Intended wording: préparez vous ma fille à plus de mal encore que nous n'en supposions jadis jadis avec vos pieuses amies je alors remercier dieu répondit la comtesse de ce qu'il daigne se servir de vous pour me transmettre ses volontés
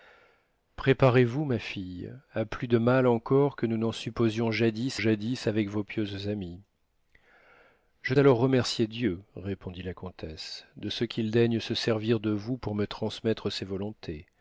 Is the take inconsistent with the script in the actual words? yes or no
no